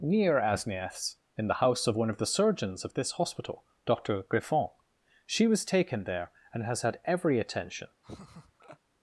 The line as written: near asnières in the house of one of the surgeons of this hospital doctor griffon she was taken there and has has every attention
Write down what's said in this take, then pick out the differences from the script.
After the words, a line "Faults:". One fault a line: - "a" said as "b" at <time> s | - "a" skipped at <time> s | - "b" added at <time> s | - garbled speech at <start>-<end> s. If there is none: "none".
near asnières in the house of one of the surgeons of this hospital doctor griffon she was taken there and has had every attention
Faults:
- "has" said as "had" at 6.8 s